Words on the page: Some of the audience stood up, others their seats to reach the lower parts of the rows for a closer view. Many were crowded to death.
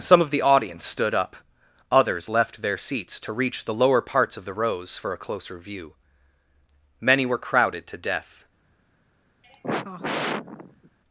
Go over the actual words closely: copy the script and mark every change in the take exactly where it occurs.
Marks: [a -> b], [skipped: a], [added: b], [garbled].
Some of the audience stood up, others [added: left] their seats to reach the lower parts of the rows for a closer view. Many were crowded to death.